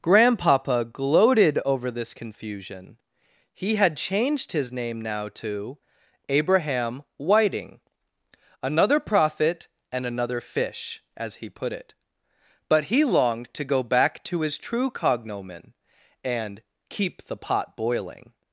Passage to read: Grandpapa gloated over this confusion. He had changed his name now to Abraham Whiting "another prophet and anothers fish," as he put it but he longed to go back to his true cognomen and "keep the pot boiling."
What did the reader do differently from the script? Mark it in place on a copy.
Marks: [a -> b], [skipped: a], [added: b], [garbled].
Grandpapa gloated over this confusion. He had changed his name now to Abraham Whiting "another prophet and [anothers -> another] fish," as he put it but he longed to go back to his true cognomen and "keep the pot boiling."